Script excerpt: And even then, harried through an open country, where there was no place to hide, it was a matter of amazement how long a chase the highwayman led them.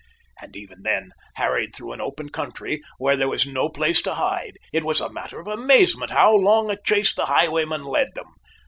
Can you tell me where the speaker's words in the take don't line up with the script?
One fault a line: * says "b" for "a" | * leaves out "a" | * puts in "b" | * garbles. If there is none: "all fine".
all fine